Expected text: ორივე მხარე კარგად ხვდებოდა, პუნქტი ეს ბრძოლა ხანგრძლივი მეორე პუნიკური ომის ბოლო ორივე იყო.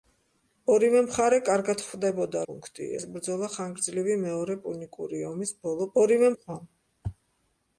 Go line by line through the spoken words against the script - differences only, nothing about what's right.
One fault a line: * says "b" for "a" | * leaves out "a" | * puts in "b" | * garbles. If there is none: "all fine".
all fine